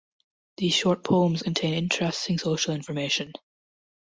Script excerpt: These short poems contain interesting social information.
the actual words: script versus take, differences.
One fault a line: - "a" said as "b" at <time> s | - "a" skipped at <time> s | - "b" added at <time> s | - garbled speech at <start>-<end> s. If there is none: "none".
none